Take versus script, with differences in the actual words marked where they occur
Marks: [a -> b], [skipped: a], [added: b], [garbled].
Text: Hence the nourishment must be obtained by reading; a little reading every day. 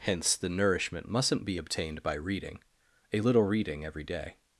Hence the nourishment [must -> mustn't] be obtained by reading; a little reading every day.